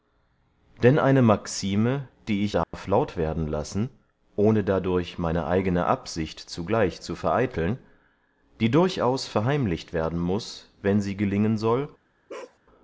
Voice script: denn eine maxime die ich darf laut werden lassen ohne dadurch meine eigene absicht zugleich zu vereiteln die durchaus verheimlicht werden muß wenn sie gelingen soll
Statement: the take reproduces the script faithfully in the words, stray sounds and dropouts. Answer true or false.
false